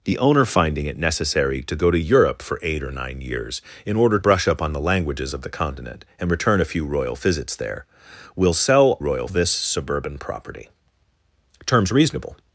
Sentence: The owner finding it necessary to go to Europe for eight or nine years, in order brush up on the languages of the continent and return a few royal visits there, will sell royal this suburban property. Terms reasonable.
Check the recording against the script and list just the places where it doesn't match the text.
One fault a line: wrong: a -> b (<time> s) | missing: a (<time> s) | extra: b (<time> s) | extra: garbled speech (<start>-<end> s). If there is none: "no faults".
no faults